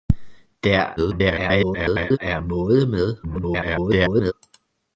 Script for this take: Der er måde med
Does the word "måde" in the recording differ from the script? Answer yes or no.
no